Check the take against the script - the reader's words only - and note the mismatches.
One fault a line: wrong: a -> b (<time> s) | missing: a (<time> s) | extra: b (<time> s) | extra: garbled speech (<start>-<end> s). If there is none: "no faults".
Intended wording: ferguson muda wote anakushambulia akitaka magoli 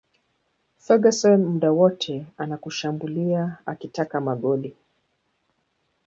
no faults